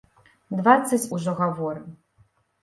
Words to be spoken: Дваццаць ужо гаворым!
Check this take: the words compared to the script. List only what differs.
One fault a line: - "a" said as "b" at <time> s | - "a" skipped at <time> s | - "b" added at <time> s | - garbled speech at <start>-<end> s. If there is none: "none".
none